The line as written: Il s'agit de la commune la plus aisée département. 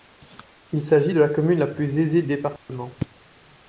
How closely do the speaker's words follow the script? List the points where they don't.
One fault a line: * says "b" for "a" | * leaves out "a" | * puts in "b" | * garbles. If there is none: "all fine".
all fine